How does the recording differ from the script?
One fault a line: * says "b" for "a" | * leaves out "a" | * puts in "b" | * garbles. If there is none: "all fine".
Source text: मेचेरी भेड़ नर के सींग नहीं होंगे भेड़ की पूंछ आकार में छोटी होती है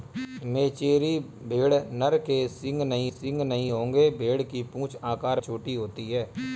* puts in "सींग नहीं"
* leaves out "में"